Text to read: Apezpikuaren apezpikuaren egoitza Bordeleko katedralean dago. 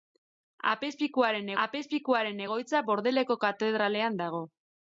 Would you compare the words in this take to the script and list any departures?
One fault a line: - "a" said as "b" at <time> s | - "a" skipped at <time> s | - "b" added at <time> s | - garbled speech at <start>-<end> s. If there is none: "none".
none